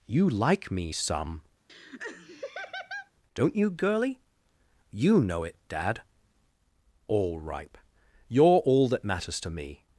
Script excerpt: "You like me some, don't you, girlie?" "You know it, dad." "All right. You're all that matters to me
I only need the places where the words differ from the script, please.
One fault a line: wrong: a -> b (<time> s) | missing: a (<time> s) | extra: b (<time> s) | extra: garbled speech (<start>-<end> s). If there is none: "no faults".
wrong: right -> ripe (7.4 s)